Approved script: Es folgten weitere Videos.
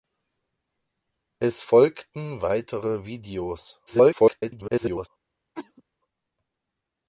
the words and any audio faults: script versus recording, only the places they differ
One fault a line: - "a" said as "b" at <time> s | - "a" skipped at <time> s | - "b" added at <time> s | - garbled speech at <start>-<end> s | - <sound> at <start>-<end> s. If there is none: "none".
- garbled speech at 3.9-5.1 s
- cough at 5.5-5.8 s